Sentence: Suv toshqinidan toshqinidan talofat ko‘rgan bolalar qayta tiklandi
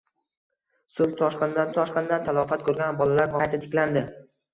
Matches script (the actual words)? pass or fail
pass